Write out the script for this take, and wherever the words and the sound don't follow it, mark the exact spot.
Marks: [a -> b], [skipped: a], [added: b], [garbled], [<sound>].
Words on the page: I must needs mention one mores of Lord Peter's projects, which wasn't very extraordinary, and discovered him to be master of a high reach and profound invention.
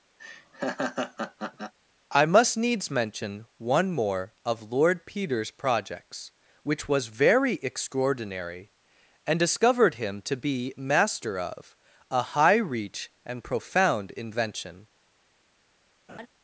[laugh] I must needs mention one [mores -> more] of Lord Peter's projects, which [wasn't -> was] very extraordinary, and discovered him to be master of a high reach and profound invention. [laugh]